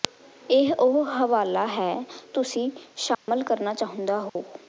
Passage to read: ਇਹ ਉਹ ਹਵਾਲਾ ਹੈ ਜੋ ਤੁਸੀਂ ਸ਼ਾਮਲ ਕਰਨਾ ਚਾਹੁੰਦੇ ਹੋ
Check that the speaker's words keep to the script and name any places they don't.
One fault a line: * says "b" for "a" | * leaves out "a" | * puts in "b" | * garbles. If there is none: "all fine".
* leaves out "ਜੋ"